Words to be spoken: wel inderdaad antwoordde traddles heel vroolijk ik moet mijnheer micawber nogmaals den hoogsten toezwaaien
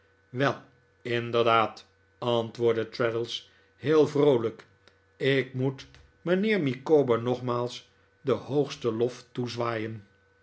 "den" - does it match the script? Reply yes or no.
yes